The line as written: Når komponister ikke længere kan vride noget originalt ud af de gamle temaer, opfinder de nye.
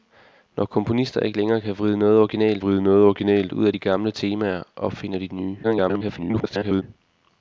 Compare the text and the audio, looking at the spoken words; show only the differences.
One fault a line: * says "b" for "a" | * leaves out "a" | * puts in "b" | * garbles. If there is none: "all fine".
* puts in "vride noget originalt"
* garbles